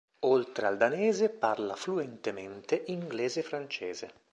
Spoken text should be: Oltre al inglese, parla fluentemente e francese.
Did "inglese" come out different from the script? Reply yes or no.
yes